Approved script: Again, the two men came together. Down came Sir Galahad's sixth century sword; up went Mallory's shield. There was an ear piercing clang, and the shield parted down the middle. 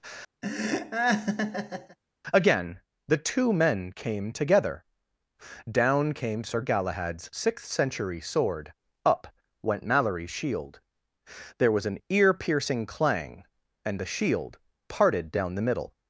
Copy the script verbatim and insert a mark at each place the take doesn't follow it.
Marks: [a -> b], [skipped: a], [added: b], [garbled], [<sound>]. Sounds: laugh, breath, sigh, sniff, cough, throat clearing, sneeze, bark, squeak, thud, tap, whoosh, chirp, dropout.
[laugh] Again, the two men came together. Down came Sir Galahad's sixth century sword; up went Mallory's shield. There was an ear piercing clang, and the shield parted down the middle.